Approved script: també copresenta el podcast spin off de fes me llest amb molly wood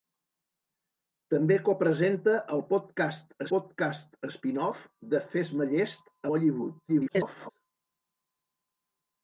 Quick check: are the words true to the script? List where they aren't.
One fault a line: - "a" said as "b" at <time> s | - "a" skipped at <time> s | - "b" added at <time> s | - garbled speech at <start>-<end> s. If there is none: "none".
- "podcast" added at 3.5 s
- "amb" skipped at 6.2 s
- garbled speech at 6.9-7.5 s